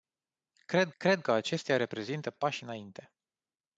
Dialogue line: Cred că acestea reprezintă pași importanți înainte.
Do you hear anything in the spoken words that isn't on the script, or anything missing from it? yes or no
yes